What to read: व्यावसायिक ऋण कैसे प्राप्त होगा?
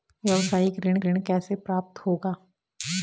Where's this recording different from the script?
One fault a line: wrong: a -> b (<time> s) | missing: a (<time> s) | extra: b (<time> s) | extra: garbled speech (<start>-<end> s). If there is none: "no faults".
extra: ऋण (1.0 s)